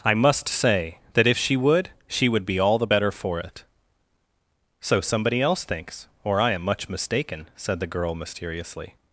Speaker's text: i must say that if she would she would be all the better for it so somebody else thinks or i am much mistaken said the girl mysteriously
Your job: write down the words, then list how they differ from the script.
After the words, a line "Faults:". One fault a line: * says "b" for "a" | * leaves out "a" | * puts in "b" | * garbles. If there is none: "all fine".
i must say that if she would she would be all the better for it so somebody else thinks or i am much mistaken said the girl mysteriously
Faults:
all fine